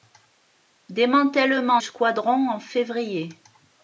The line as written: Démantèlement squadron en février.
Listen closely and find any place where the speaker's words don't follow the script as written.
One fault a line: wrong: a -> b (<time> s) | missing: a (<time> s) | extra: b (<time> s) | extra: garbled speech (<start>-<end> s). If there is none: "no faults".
no faults